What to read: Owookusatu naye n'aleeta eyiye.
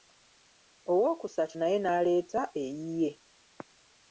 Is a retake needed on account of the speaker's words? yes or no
no